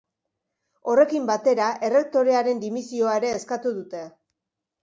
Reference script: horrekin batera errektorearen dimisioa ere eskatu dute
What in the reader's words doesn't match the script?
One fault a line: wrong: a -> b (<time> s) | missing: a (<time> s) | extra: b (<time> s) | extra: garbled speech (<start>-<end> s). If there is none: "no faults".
no faults